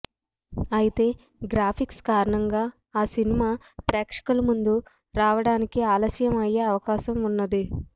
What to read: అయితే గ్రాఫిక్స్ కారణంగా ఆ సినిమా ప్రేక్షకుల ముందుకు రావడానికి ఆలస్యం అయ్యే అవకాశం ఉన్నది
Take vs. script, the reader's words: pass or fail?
pass